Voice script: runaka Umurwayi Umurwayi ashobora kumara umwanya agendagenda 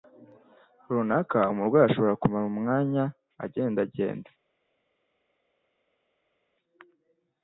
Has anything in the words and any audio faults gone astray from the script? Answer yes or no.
yes